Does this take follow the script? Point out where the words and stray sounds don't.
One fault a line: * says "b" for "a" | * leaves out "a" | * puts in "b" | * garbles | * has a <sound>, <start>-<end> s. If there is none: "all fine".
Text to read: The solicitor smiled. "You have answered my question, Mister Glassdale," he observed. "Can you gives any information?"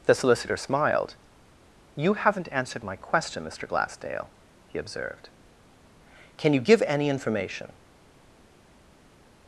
* says "haven't" for "have"
* says "give" for "gives"